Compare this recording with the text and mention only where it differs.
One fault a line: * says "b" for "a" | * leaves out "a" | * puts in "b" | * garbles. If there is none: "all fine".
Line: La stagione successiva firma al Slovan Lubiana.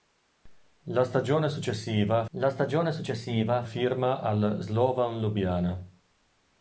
* puts in "la stagione successiva"